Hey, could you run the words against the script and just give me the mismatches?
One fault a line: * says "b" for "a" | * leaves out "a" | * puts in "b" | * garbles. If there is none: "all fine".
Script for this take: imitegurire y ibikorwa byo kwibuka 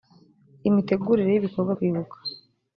* leaves out "byo"